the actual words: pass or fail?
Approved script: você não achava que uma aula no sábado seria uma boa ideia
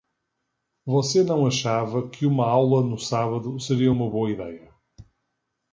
pass